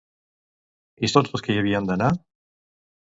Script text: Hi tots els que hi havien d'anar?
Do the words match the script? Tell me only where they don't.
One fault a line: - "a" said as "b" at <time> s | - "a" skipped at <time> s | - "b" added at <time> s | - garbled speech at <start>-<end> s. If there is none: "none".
none